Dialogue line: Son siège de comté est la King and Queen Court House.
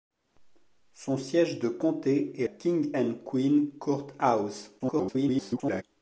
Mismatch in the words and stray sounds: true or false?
true